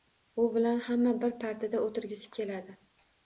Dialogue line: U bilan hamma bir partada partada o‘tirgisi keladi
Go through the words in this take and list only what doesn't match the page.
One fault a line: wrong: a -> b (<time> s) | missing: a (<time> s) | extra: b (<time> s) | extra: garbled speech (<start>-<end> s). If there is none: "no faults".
missing: partada (1.8 s)